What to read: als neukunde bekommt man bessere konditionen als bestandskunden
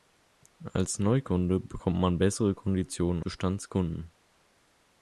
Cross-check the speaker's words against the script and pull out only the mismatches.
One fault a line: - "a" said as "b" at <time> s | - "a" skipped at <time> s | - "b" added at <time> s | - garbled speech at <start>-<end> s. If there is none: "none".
- "als" skipped at 3.2 s